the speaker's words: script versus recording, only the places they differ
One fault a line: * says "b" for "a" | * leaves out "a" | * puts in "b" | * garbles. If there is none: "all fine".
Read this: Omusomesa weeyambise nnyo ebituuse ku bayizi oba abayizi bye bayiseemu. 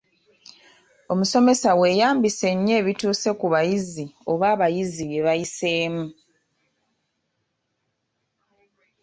all fine